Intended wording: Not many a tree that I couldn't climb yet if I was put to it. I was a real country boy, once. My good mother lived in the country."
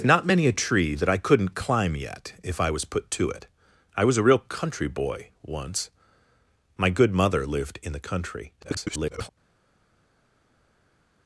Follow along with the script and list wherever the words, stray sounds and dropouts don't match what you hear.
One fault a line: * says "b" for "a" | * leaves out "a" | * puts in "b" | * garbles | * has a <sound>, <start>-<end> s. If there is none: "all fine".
* garbles